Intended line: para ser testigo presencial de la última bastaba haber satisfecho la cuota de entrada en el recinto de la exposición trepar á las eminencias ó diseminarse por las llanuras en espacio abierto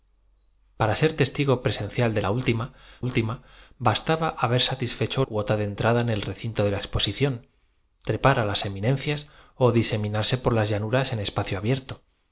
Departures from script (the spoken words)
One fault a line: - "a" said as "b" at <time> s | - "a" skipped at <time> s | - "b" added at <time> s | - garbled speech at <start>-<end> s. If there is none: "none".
- "última" added at 3.0 s
- "la" skipped at 5.2 s